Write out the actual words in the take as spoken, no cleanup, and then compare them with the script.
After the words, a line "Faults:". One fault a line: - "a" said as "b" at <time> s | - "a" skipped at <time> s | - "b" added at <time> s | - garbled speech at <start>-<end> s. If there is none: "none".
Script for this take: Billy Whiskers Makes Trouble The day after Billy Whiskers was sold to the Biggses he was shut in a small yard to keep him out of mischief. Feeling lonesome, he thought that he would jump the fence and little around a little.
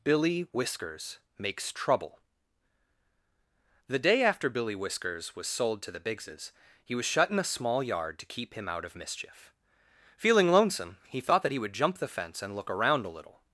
Billy Whiskers Makes Trouble The day after Billy Whiskers was sold to the Biggses he was shut in a small yard to keep him out of mischief. Feeling lonesome, he thought that he would jump the fence and look around a little.
Faults:
- "little" said as "look" at 12.6 s